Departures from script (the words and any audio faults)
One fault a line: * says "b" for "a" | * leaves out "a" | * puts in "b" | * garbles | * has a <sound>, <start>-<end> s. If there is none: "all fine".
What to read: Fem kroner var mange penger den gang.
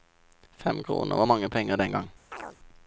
* has a chirp, 2.3-2.6 s